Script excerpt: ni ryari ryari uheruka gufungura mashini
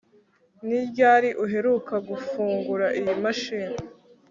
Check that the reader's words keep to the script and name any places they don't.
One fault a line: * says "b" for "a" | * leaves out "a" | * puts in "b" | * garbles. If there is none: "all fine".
* leaves out "ryari"
* puts in "iyi"